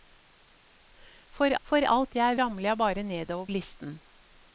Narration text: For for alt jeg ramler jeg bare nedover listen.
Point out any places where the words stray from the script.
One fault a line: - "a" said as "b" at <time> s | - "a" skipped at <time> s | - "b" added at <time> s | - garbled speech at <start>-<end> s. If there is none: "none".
none